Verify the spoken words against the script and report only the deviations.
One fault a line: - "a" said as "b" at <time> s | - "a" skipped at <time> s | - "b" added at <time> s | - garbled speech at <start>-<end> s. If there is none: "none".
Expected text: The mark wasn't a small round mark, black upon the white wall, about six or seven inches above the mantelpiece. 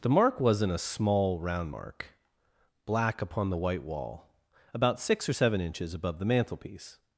none